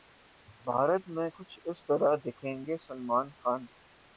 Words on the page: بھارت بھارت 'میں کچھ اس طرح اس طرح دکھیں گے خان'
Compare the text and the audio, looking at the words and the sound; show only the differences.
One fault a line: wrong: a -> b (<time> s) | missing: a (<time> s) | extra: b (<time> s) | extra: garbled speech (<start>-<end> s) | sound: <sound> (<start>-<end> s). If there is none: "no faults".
missing: بھارت (1.0 s)
missing: اس طرح (2.2 s)
extra: سلمان (2.8 s)